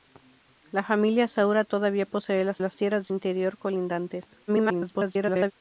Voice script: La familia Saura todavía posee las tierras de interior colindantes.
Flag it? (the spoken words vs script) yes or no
yes